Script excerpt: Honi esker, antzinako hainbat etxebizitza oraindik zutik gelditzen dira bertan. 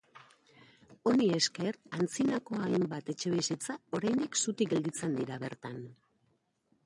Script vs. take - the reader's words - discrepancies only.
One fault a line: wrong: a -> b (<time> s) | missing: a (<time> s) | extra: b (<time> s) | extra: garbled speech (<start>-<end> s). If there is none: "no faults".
no faults